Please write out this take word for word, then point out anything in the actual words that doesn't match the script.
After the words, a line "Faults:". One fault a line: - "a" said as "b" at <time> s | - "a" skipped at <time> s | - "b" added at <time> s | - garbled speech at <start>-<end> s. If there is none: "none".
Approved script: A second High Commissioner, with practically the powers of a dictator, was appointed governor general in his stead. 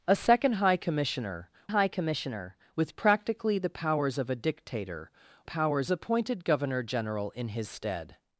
A second High Commissioner High Commissioner, with practically the powers of a dictator, powers appointed governor general in his stead.
Faults:
- "High Commissioner" added at 1.7 s
- "was" said as "powers" at 5.4 s